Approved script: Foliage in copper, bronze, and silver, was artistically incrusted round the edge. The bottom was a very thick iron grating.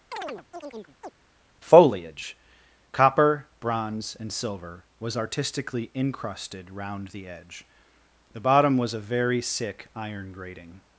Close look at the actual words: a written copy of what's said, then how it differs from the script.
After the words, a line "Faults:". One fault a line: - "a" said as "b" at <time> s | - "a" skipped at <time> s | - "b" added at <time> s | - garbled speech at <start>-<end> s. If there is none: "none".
Foliage copper, bronze, and silver, was artistically incrusted round the edge. The bottom was a very sick iron grating.
Faults:
- "in" skipped at 2.4 s
- "thick" said as "sick" at 9.4 s